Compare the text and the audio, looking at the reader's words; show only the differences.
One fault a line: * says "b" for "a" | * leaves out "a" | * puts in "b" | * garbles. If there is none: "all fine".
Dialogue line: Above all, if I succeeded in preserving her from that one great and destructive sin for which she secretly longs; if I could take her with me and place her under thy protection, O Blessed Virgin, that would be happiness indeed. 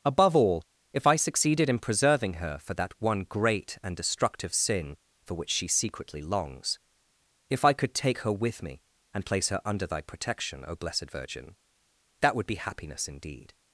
* says "for" for "from"